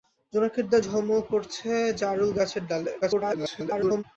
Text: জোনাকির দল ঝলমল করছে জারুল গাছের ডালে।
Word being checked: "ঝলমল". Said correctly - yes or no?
yes